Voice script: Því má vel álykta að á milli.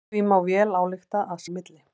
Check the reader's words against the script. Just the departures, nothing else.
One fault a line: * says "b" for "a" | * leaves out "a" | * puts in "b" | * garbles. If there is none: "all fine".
all fine